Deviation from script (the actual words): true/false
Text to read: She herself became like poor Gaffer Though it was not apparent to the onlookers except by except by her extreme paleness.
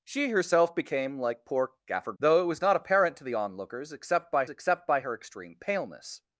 false